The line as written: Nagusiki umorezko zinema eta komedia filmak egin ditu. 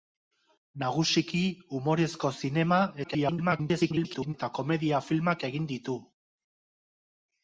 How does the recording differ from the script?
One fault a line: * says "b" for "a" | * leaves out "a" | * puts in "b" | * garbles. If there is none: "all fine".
* garbles